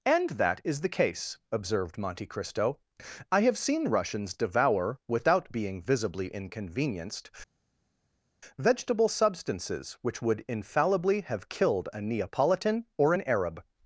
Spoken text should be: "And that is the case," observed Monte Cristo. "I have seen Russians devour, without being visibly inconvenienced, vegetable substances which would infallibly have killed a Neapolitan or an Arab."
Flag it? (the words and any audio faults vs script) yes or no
no